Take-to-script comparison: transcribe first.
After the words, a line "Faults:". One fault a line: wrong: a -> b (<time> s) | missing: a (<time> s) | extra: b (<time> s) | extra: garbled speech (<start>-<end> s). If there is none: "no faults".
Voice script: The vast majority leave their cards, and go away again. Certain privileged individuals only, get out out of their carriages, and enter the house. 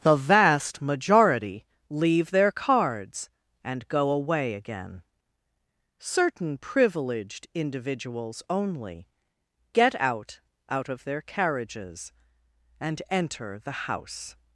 The vast majority leave their cards, and go away again. Certain privileged individuals only, get out out of their carriages, and enter the house.
Faults:
no faults